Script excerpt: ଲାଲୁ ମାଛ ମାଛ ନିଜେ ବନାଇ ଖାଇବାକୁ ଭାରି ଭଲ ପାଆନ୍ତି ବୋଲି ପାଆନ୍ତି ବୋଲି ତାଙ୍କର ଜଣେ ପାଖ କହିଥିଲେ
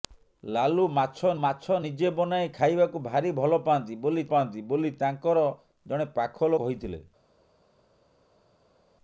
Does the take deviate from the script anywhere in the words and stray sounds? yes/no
no